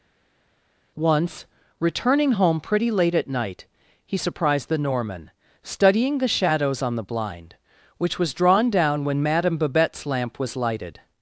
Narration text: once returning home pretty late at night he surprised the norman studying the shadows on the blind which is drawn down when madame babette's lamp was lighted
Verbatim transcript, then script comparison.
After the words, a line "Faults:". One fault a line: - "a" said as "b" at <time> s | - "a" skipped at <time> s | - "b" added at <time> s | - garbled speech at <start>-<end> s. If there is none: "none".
once returning home pretty late at night he surprised the norman studying the shadows on the blind which was drawn down when madame babette's lamp was lighted
Faults:
- "is" said as "was" at 8.2 s